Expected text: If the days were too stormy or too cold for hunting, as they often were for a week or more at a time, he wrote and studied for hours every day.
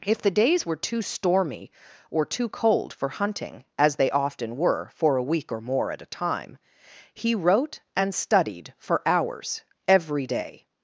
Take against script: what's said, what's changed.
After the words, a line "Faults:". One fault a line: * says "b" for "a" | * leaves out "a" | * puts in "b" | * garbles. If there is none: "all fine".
If the days were too stormy or too cold for hunting, as they often were for a week or more at a time, he wrote and studied for hours every day.
Faults:
all fine